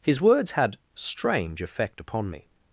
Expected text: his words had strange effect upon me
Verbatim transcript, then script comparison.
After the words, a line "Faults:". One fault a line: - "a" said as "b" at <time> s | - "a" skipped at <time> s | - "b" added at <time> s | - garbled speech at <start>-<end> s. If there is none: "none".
his words had strange effect upon me
Faults:
none